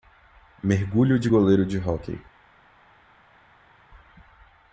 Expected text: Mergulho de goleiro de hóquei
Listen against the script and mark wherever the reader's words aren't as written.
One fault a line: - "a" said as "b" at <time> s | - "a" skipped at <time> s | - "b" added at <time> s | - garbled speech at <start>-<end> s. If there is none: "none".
none